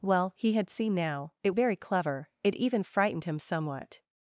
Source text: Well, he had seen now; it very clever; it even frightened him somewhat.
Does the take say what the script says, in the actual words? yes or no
yes